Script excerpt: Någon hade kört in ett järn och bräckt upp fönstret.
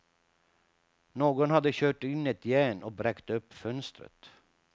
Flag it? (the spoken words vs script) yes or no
no